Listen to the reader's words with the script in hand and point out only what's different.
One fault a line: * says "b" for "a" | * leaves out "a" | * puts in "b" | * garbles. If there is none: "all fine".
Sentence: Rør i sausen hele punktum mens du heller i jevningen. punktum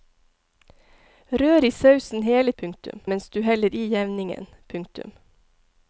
all fine